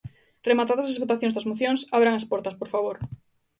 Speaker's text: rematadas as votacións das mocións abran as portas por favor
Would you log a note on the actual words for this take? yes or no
no